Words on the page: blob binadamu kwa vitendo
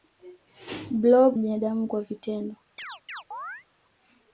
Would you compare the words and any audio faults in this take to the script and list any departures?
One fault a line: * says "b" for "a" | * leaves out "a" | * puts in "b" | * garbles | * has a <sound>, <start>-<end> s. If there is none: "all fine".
* has a chirp, 2.8-3.6 s